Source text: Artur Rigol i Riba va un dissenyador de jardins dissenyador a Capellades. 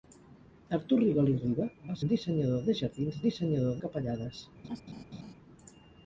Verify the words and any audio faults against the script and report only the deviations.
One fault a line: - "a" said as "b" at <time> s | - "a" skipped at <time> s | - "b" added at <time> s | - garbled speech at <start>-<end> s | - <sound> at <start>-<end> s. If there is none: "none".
- laugh at 4.6-5.3 s